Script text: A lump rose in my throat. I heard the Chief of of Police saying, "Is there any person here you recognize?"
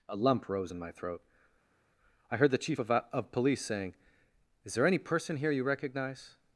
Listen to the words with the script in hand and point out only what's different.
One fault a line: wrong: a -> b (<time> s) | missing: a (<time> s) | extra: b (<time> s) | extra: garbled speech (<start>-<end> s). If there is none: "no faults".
no faults